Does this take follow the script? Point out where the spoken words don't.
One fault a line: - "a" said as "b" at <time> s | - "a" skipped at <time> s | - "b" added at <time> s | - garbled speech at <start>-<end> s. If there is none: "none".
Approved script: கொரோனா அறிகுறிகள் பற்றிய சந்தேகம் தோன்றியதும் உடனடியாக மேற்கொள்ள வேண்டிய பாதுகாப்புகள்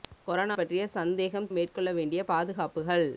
- "அறிகுறிகள்" skipped at 0.6 s
- "தோன்றியதும் உடனடியாக" skipped at 1.5 s